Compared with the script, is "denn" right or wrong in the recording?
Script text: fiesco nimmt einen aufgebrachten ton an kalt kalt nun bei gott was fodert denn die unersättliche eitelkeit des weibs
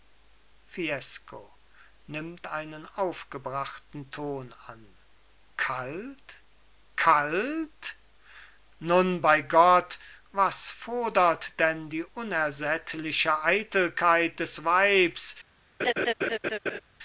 right